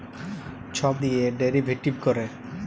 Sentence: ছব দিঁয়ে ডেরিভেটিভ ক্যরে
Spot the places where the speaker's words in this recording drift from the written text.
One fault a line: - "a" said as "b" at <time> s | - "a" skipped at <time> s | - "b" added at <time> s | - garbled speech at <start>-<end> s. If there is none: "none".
none